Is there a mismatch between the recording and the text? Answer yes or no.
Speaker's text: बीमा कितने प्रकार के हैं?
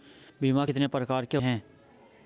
no